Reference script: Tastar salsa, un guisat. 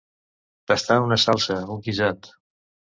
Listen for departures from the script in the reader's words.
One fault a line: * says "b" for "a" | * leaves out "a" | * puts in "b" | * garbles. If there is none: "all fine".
* puts in "una"